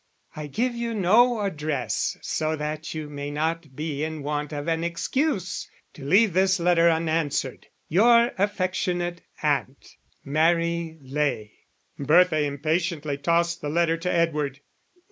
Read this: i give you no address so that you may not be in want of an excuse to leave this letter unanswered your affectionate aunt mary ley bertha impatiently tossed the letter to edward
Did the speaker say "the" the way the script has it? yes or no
yes